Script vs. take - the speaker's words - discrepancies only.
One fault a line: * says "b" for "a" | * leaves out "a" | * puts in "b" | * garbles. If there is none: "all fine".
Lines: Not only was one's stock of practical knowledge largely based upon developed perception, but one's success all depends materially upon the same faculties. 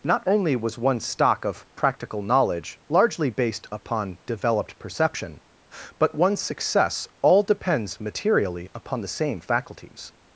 all fine